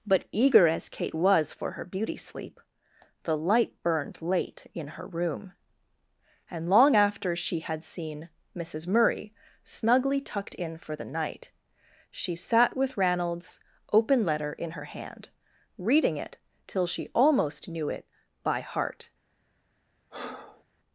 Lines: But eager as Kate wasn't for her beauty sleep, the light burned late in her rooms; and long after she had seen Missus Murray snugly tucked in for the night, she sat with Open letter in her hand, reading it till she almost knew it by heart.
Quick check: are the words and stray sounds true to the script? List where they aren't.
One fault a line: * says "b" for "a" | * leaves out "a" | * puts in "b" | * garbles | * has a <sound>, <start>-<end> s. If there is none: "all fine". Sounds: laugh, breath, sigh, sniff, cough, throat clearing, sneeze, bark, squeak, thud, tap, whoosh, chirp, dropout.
* says "was" for "wasn't"
* says "room" for "rooms"
* puts in "Ranald's"
* has a breath, 20.1-20.6 s